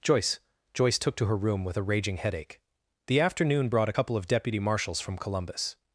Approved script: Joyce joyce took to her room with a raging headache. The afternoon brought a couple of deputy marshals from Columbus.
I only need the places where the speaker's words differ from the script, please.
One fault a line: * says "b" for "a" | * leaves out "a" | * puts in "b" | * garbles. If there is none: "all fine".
all fine